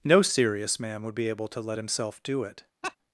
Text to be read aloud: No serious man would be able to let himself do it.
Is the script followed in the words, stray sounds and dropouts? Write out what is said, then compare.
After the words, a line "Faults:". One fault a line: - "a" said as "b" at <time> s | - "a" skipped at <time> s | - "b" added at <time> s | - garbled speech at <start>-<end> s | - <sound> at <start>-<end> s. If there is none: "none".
No serious man would be able to let himself do it.
Faults:
- laugh at 2.8-3.0 s